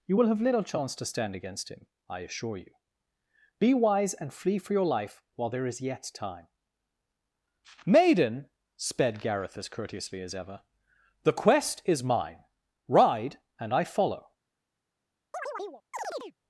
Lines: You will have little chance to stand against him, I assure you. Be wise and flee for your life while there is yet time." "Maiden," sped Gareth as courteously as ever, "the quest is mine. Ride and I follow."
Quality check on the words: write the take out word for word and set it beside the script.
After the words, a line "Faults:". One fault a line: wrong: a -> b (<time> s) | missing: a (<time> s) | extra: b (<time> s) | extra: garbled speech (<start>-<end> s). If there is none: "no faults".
You will have little chance to stand against him, I assure you. Be wise and flee for your life while there is yet time." "Maiden," sped Gareth as courteously as ever, "the quest is mine. Ride and I follow."
Faults:
no faults